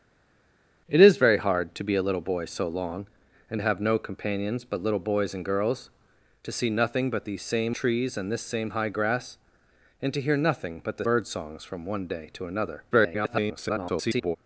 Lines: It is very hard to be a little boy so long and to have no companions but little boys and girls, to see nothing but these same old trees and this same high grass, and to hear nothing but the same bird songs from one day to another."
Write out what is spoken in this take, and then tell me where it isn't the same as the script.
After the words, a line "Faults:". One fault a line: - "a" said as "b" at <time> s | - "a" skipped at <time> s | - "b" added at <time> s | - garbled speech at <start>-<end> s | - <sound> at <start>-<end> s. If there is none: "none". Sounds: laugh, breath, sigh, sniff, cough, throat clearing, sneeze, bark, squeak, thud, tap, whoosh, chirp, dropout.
It is very hard to be a little boy so long and to have no companions but little boys and girls, to see nothing but these same trees and this same high grass, and to hear nothing but the bird songs from one day to another." [garbled]
Faults:
- "old" skipped at 7.8 s
- "same" skipped at 11.1 s
- garbled speech at 12.9-14.4 s